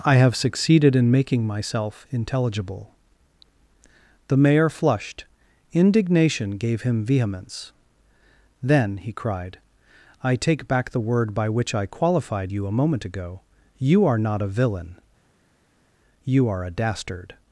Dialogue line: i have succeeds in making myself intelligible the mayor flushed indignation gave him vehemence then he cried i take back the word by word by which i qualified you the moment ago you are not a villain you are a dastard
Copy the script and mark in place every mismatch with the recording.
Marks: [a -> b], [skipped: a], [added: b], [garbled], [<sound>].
i have [succeeds -> succeeded] in making myself intelligible the mayor flushed indignation gave him vehemence then he cried i take back the word by [skipped: word by] which i qualified you [the -> a] moment ago you are not a villain you are a dastard